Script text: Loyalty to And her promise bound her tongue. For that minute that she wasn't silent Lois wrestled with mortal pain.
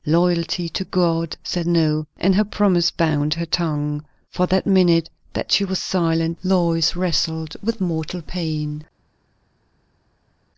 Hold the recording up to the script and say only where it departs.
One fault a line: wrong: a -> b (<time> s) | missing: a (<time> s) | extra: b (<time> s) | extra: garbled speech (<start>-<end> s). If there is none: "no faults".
extra: God said no (0.8 s)
wrong: wasn't -> was (5.6 s)